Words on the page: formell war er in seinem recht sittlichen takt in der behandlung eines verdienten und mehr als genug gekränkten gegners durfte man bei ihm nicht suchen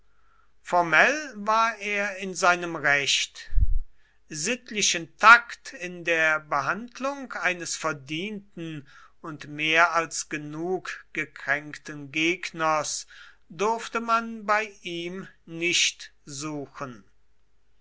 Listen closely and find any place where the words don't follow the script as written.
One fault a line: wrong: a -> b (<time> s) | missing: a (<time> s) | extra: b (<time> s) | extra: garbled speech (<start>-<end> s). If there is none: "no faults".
no faults